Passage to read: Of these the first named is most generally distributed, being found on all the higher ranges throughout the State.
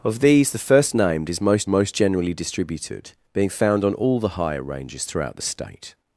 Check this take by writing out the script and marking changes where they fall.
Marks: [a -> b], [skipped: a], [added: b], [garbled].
Of these the first named is most [added: most] generally distributed, being found on all the higher ranges throughout the State.